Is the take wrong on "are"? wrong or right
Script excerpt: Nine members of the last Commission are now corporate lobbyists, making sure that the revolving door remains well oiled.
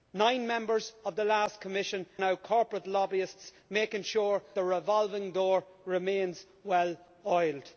wrong